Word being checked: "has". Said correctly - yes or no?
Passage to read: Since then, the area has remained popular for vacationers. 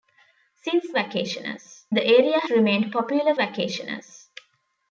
no